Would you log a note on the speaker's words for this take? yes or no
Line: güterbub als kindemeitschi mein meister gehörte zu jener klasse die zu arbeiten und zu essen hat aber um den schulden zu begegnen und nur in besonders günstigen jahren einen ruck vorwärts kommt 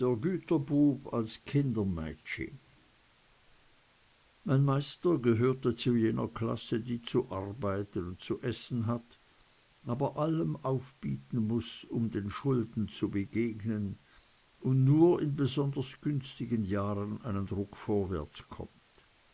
yes